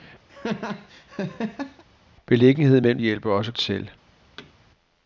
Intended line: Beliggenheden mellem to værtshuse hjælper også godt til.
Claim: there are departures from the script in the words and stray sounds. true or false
true